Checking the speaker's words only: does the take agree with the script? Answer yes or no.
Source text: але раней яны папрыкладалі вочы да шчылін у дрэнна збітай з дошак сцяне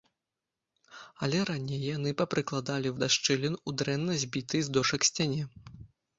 no